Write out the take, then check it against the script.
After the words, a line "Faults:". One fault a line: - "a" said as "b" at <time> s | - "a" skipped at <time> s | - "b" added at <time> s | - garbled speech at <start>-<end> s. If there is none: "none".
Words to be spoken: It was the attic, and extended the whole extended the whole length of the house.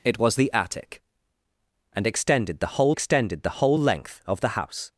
It was the attic, and extended the whole extended the whole length of the house.
Faults:
none